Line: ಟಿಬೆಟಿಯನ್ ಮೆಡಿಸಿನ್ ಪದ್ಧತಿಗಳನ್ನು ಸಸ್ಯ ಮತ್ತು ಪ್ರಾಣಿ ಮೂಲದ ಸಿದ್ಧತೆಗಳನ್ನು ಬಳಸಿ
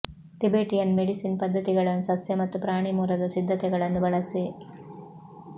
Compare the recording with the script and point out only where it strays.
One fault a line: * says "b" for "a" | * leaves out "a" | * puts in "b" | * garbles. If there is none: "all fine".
all fine